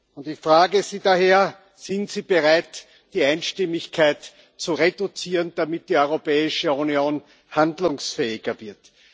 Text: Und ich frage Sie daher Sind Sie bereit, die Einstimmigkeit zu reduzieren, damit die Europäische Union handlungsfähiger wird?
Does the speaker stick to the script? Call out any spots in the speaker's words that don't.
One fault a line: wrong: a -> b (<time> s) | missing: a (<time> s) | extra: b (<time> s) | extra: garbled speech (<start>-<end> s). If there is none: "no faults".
no faults